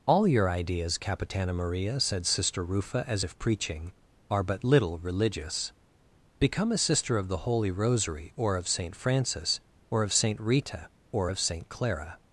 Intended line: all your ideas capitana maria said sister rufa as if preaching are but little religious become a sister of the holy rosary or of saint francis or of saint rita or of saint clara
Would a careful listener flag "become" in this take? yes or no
no